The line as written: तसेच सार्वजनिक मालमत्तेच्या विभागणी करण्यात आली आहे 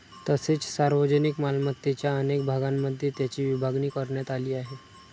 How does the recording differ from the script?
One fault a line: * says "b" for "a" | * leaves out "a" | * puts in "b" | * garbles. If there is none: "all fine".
* puts in "अनेक भागांमध्ये त्याची"